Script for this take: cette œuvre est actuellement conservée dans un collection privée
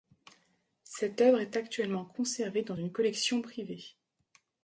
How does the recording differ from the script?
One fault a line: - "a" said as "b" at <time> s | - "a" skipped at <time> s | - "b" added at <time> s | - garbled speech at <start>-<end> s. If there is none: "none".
- "un" said as "une" at 2.7 s